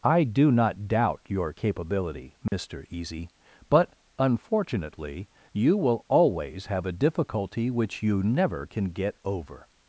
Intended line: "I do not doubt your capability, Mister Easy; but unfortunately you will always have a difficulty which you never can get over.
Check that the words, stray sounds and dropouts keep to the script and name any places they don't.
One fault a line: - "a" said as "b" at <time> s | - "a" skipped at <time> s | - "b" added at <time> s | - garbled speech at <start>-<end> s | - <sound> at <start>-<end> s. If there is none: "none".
- dropout at 2.5-2.5 s